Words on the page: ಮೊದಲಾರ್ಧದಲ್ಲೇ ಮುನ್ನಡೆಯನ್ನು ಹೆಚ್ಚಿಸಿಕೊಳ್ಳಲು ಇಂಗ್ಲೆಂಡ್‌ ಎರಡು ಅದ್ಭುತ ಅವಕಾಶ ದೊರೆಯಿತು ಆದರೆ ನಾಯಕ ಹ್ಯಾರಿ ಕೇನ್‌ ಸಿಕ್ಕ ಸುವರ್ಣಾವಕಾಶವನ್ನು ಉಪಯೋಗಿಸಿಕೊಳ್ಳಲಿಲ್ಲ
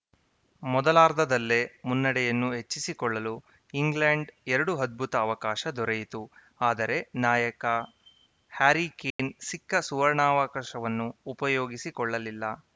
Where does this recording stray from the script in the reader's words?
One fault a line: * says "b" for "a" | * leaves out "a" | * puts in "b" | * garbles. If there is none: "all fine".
all fine